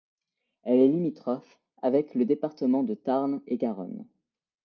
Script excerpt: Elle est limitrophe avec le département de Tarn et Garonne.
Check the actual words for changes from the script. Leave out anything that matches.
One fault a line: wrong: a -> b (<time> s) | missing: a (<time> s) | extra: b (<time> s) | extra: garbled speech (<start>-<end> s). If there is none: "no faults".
no faults